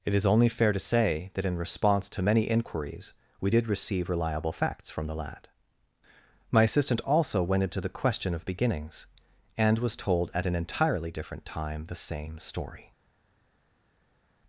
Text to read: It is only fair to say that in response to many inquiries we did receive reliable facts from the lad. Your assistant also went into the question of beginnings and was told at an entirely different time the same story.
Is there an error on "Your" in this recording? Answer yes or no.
yes